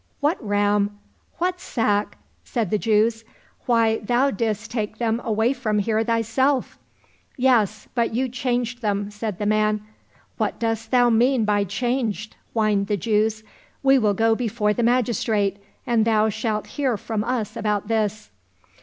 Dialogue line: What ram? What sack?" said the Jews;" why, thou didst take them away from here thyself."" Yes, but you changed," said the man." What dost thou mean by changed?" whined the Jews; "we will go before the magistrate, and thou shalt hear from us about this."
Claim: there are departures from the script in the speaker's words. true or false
true